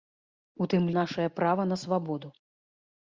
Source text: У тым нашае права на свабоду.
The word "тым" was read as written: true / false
true